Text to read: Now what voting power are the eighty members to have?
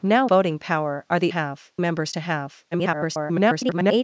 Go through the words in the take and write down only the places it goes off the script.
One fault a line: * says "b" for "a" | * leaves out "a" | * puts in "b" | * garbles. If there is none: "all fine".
* leaves out "what"
* says "have" for "eighty"
* garbles